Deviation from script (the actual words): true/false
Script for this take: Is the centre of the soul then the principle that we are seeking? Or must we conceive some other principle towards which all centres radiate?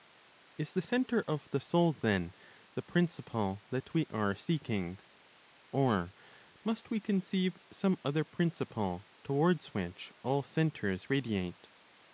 false